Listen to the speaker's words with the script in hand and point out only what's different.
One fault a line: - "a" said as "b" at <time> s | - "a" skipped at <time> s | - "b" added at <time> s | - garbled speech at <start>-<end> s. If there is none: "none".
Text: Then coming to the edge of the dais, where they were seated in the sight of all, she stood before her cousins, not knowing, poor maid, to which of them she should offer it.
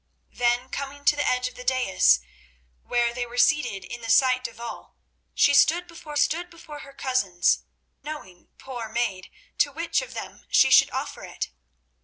- "stood before" added at 6.2 s
- "not" skipped at 7.6 s